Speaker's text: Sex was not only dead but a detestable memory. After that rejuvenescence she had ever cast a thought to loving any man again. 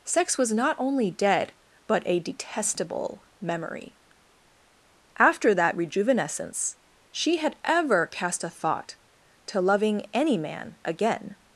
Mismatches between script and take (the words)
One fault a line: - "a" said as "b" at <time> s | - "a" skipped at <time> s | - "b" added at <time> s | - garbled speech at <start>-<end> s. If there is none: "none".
none